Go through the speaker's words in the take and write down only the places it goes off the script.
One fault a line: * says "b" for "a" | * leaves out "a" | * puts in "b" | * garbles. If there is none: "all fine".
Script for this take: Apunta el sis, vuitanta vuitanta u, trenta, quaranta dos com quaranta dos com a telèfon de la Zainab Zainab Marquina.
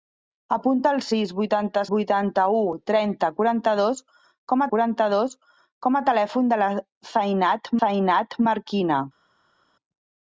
all fine